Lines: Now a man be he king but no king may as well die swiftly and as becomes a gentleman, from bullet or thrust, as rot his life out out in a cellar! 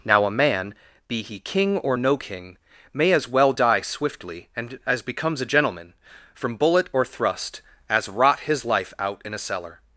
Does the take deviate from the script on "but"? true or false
true